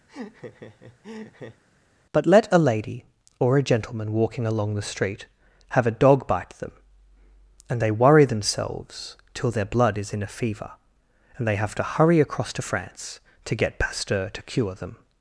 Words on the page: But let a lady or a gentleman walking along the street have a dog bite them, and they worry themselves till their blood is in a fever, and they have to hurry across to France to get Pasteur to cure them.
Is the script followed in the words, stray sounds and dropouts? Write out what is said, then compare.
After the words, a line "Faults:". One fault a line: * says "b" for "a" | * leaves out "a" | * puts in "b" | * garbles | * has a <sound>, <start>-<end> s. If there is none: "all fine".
But let a lady or a gentleman walking along the street have a dog bite them, and they worry themselves till their blood is in a fever, and they have to hurry across to France to get Pasteur to cure them.
Faults:
* has a laugh, 0.1-1.6 s